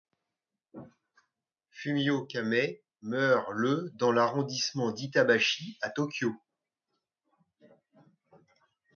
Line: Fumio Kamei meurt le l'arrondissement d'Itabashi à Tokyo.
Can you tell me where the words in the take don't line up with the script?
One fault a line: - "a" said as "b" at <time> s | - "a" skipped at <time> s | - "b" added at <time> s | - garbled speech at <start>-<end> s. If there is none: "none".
- "dans" added at 3.9 s